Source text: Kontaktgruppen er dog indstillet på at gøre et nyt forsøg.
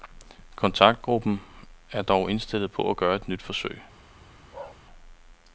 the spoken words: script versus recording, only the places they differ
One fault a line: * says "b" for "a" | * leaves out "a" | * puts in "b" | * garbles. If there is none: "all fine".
all fine